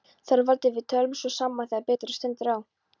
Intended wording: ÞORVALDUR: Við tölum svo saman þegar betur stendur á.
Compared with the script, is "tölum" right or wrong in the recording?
right